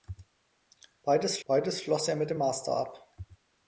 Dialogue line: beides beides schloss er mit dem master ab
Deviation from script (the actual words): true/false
false